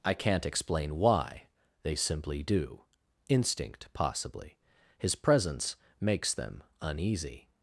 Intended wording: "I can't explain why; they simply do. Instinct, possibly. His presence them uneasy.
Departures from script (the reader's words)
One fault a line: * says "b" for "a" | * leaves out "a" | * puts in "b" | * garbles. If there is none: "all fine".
* puts in "makes"